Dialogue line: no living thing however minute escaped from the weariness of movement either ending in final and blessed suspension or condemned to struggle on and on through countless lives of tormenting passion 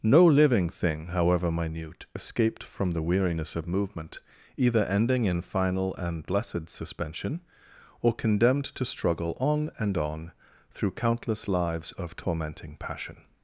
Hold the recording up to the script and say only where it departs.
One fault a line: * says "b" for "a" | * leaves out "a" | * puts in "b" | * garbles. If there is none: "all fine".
all fine